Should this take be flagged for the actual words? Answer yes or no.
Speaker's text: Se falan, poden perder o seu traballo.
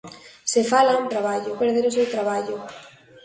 yes